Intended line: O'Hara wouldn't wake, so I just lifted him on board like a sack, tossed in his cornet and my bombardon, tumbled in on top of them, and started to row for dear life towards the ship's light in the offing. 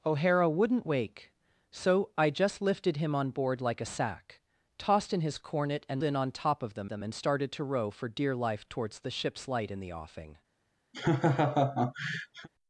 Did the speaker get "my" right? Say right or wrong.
wrong